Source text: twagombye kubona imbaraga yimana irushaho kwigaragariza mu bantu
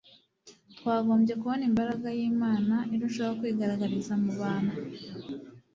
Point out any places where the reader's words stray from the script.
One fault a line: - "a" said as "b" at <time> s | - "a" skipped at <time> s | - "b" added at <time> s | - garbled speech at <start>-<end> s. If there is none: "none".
none